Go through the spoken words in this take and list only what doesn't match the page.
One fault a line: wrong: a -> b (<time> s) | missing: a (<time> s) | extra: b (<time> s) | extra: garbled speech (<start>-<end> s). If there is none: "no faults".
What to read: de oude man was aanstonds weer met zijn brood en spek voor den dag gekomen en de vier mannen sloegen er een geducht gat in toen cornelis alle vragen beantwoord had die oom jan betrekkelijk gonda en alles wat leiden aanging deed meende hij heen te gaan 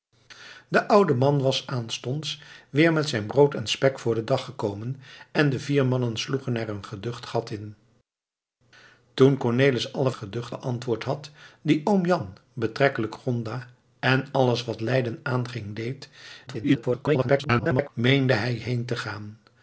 wrong: vragen -> geducht (10.1 s)
extra: garbled speech (16.5-17.9 s)